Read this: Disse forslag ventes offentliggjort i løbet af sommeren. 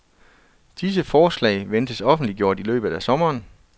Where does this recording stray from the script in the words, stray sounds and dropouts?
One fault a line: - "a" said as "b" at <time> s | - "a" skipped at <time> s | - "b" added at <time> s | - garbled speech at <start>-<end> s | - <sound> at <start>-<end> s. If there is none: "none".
none